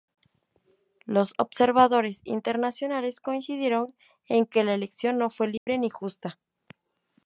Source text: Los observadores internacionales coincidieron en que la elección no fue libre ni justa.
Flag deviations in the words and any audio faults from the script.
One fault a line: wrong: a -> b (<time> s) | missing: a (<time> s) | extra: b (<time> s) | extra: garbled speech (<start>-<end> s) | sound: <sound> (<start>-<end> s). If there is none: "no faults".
sound: dropout (5.6-5.7 s)